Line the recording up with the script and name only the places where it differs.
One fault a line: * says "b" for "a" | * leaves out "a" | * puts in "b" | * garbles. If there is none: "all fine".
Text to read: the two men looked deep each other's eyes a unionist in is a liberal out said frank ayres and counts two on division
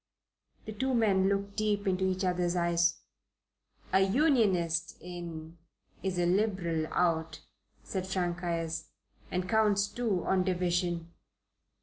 * puts in "into"